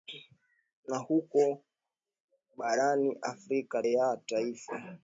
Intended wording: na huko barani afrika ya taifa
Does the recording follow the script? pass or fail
pass